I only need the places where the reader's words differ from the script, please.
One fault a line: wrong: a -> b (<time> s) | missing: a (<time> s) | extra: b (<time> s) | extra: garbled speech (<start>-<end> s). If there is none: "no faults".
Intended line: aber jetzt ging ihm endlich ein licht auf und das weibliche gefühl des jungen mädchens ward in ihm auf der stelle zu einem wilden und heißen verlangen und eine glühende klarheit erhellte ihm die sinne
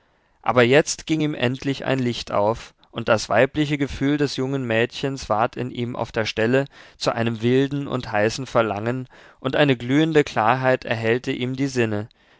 no faults